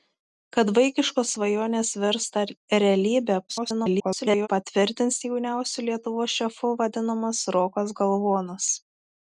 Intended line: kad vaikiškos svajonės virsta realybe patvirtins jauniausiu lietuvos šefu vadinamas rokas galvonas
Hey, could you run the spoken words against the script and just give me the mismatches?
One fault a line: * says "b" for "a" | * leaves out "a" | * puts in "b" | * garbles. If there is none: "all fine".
* garbles